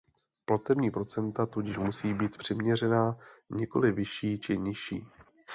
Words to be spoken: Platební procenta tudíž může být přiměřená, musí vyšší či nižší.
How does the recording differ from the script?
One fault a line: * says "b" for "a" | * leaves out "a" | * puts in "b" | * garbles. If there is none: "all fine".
* says "musí" for "může"
* says "nikoli" for "musí"